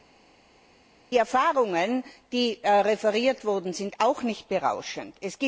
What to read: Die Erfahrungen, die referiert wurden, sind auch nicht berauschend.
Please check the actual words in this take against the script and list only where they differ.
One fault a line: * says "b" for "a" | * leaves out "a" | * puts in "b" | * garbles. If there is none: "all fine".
all fine